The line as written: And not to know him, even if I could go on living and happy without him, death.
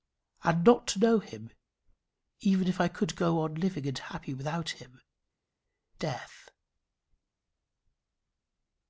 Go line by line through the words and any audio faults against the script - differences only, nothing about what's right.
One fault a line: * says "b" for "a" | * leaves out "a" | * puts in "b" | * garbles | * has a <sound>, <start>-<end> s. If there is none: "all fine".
all fine